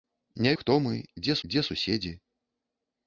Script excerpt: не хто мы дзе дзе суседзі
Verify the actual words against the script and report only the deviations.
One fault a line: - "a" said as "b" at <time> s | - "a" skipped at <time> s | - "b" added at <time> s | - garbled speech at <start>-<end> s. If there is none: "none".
none